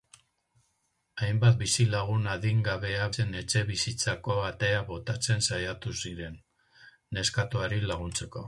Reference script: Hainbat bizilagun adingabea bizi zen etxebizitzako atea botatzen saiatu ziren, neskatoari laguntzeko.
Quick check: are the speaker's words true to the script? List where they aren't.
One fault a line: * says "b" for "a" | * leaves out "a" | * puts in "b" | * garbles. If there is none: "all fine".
* leaves out "bizi"